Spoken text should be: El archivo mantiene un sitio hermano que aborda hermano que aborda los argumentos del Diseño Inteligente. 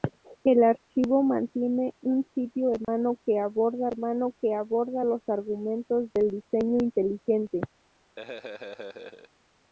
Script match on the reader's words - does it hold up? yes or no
yes